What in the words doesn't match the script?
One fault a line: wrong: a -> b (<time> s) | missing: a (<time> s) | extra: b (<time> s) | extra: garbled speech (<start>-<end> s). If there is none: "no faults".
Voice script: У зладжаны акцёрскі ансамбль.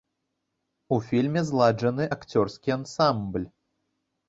extra: фільме (1.1 s)